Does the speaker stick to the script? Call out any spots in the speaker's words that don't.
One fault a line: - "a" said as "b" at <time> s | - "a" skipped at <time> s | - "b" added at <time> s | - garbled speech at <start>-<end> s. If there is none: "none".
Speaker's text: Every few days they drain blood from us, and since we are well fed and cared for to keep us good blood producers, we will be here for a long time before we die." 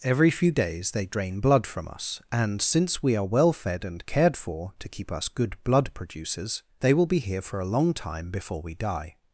- "we" said as "they" at 6.8 s